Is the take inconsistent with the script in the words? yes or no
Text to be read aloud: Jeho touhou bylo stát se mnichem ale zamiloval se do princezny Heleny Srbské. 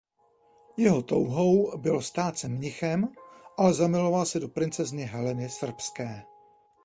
no